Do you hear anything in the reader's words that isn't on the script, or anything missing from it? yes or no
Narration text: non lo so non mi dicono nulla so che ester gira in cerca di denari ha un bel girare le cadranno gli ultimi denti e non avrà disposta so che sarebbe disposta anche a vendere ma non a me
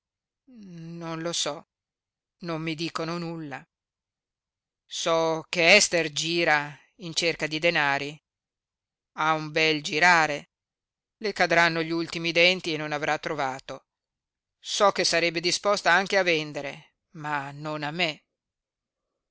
yes